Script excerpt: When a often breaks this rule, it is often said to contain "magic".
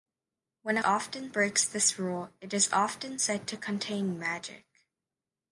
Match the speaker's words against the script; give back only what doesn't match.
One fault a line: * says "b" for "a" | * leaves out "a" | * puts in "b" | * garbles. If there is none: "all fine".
all fine